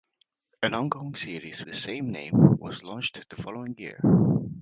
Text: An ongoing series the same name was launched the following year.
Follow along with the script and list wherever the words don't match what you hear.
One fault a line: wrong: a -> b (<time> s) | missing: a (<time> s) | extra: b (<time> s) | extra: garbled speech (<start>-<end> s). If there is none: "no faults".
no faults